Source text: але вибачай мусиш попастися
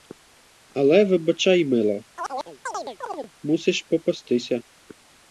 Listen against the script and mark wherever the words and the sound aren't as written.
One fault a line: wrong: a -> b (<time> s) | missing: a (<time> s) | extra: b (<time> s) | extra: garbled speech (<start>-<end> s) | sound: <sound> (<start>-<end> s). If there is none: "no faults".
extra: мила (1.6 s)
sound: chirp (2.2-3.3 s)